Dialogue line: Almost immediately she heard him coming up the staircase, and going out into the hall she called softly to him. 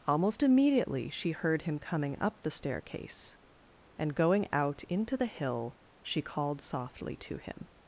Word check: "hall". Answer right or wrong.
wrong